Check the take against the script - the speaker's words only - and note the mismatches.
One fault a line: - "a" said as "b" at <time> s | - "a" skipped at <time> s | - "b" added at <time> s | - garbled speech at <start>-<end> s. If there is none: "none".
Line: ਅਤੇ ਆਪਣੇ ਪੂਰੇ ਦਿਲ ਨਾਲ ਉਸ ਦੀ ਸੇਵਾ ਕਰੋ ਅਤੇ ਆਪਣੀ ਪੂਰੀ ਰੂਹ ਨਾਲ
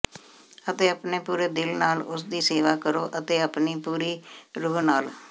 none